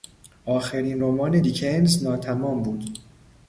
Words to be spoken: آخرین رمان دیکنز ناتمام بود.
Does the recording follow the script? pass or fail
pass